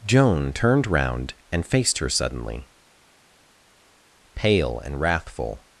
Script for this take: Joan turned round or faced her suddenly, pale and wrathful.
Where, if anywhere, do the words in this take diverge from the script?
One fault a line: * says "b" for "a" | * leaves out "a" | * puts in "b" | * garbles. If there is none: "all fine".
* says "and" for "or"